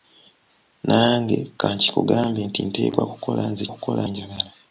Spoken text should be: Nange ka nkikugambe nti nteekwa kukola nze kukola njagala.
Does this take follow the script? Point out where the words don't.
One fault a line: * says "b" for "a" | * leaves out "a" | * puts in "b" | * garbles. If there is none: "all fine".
all fine